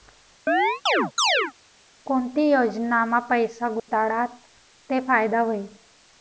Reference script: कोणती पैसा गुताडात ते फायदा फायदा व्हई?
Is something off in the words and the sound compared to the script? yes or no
yes